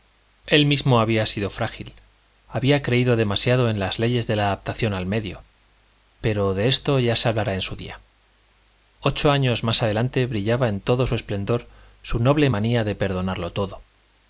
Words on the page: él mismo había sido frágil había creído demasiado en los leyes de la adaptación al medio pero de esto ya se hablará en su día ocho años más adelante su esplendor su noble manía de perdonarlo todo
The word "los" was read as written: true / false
false